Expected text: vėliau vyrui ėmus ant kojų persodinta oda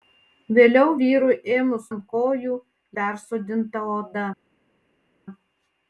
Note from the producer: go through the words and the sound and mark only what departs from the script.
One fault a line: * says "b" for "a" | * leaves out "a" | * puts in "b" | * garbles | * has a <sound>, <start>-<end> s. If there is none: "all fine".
all fine